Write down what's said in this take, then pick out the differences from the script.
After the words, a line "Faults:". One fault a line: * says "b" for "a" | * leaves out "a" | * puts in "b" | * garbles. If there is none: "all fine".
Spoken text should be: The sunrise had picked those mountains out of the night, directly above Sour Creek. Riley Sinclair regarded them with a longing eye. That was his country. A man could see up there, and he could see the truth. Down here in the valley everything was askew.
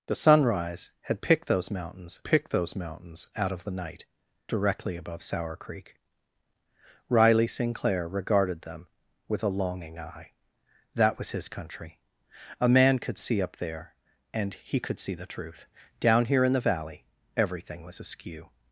The sunrise had picked those mountains picked those mountains out of the night, directly above Sour Creek. Riley Sinclair regarded them with a longing eye. That was his country. A man could see up there, and he could see the truth. Down here in the valley everything was askew.
Faults:
* puts in "picked those mountains"